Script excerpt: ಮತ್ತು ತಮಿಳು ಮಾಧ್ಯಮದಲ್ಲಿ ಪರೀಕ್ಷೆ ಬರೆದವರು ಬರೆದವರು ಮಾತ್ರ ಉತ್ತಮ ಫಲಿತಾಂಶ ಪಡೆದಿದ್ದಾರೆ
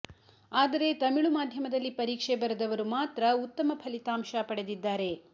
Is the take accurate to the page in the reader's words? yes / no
no